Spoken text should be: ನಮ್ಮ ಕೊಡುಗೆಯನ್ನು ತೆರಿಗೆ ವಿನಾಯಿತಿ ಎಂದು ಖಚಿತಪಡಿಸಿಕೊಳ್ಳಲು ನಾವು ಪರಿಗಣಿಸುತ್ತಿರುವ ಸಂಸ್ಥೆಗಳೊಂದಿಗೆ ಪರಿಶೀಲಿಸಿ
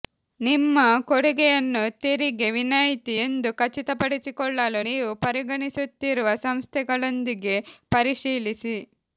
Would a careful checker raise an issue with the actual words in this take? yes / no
yes